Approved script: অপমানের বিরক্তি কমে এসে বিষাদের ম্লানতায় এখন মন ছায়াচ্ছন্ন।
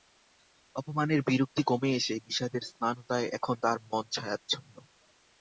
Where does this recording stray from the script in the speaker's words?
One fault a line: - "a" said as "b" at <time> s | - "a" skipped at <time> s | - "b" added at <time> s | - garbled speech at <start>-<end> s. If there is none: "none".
- "তার" added at 3.6 s